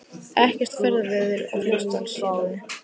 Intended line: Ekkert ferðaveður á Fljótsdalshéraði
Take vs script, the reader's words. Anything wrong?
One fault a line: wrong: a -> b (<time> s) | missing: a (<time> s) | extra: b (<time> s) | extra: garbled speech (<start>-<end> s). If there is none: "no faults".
no faults